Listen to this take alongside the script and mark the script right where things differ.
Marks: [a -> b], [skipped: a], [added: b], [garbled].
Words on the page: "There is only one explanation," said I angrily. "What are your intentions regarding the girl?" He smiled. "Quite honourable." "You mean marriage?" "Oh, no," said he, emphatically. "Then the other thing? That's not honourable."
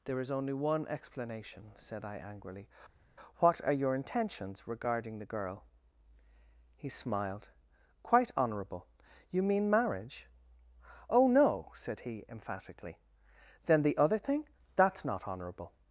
"There is only one explanation," said I angrily. "What are your intentions regarding the girl?" He smiled. "Quite honourable." "You mean marriage?" "Oh, no," said he, emphatically. "Then the other thing? That's not honourable."